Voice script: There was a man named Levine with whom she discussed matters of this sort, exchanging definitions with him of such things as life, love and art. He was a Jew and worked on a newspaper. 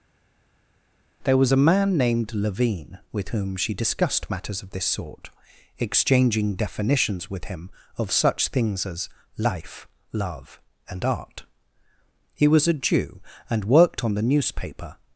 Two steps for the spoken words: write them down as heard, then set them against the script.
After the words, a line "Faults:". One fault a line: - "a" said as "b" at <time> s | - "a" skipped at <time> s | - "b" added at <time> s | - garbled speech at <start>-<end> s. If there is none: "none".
There was a man named Levine with whom she discussed matters of this sort, exchanging definitions with him of such things as life, love and art. He was a Jew and worked on the newspaper.
Faults:
- "a" said as "the" at 14.2 s